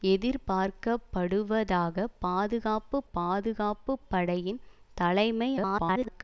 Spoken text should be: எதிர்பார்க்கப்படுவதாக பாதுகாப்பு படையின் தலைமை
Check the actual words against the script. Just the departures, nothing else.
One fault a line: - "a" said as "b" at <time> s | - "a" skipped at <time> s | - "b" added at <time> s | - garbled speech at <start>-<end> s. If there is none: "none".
- "பாதுகாப்பு" added at 3.1 s
- garbled speech at 5.5-6.2 s